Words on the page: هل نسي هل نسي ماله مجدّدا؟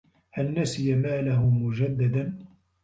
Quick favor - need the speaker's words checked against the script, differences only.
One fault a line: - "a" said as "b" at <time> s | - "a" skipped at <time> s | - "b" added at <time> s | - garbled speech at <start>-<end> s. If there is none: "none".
- "هل نسي" skipped at 0.9 s